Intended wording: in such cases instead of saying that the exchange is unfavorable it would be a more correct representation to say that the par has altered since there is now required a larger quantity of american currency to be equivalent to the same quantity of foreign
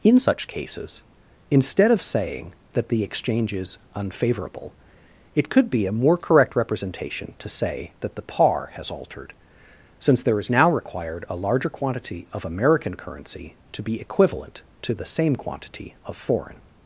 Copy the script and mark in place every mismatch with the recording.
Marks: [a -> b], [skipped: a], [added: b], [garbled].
in such cases instead of saying that the exchange is unfavorable it [would -> could] be a more correct representation to say that the par has altered since there is now required a larger quantity of american currency to be equivalent to the same quantity of foreign